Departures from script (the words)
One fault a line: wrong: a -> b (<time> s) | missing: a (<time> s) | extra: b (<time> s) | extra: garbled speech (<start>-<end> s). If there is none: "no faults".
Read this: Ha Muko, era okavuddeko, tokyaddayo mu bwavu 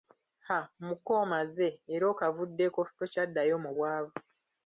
extra: omaze (1.2 s)